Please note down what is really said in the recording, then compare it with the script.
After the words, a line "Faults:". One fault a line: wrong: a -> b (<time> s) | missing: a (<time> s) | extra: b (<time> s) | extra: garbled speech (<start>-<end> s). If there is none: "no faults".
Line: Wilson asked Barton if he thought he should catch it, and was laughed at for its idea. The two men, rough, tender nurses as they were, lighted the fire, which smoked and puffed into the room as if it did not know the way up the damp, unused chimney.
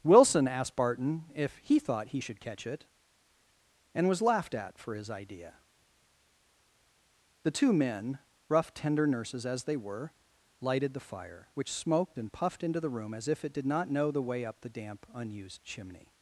Wilson asked Barton if he thought he should catch it, and was laughed at for his idea. The two men, rough, tender nurses as they were, lighted the fire, which smoked and puffed into the room as if it did not know the way up the damp, unused chimney.
Faults:
wrong: its -> his (4.9 s)